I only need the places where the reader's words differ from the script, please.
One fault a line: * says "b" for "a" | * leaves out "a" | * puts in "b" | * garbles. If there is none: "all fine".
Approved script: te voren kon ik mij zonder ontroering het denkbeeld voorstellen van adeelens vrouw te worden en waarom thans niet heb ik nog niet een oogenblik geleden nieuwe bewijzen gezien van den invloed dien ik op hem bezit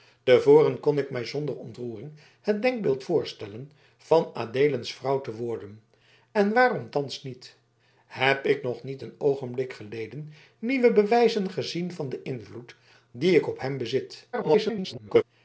* garbles